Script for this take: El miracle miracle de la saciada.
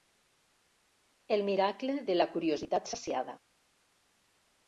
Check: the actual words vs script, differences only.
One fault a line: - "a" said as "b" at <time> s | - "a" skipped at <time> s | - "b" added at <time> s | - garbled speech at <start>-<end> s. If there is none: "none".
- "miracle" skipped at 2.0 s
- "curiositat" added at 2.3 s